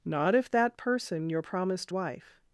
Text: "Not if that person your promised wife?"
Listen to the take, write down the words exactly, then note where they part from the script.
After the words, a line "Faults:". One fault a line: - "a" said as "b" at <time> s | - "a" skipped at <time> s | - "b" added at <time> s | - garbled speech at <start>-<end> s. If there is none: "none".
"Not if that person your promised wife?"
Faults:
none